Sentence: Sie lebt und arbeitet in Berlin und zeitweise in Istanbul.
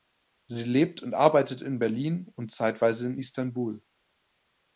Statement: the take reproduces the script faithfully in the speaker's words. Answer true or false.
true